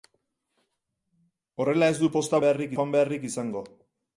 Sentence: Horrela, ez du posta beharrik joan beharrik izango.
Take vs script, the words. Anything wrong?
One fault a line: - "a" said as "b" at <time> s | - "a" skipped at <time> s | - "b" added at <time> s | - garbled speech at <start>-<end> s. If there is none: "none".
none